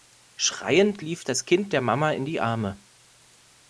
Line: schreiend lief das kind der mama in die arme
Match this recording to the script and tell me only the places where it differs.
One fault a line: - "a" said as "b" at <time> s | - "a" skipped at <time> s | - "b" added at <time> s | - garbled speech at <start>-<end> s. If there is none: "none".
none